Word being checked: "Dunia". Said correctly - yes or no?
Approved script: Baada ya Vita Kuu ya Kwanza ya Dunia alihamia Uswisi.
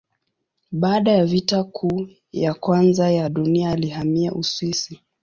yes